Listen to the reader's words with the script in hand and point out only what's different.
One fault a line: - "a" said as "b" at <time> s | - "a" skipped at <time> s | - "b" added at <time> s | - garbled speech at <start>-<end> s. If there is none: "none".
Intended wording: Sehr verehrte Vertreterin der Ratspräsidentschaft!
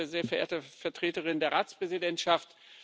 none